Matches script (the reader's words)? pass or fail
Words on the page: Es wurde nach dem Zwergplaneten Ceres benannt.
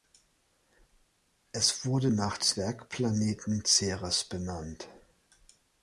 fail